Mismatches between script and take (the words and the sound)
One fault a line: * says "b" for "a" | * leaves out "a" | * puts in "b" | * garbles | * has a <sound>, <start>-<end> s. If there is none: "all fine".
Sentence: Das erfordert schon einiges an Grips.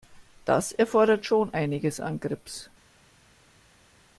all fine